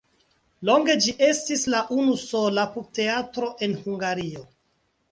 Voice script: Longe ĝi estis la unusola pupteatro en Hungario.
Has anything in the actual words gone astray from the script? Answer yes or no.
no